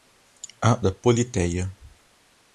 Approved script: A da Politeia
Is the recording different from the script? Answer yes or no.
no